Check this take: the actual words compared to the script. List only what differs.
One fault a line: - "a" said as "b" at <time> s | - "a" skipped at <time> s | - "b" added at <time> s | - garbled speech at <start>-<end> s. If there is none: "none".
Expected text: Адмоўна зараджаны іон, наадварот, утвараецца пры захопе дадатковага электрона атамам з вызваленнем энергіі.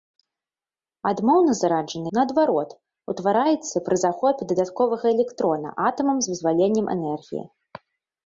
- "іон" skipped at 2.1 s